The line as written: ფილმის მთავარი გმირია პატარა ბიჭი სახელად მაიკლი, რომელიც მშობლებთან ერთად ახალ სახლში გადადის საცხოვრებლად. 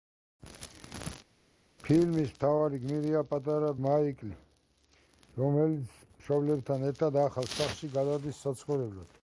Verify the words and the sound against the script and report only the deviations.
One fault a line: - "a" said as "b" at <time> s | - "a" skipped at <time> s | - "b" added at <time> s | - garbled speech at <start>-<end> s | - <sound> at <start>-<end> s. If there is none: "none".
- "ბიჭი სახელად" skipped at 3.7 s